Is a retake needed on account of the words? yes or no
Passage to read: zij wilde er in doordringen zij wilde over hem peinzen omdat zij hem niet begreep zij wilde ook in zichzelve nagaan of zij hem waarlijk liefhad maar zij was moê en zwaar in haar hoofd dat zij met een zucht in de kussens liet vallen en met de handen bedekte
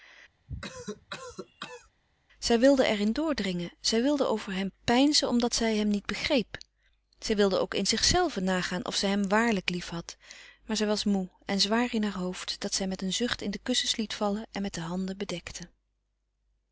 no